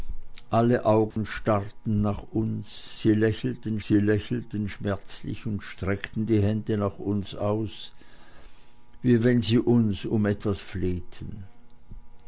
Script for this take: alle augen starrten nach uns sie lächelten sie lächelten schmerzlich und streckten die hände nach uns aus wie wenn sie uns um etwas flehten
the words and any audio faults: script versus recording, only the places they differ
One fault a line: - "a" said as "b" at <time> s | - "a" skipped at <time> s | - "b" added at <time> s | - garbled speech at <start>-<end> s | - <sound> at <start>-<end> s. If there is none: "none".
- dropout at 1.1-1.2 s